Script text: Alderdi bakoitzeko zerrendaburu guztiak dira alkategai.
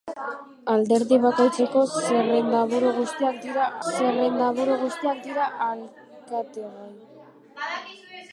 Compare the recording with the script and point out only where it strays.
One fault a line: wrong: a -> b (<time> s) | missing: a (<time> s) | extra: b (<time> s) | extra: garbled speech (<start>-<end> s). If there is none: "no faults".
extra: zerrendaburu guztiak dira (3.9 s)